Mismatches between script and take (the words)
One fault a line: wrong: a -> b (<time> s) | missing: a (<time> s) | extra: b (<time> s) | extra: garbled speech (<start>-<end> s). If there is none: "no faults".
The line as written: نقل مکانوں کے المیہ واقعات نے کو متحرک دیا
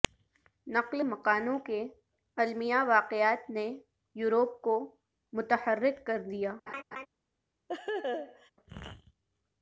extra: یورپ (4.2 s)
extra: کر (6.1 s)